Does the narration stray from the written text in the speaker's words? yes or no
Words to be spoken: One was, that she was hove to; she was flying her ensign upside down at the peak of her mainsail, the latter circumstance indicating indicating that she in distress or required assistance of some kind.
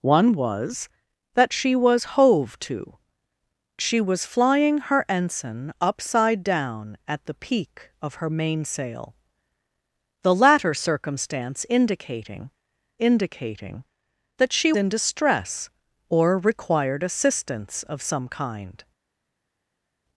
no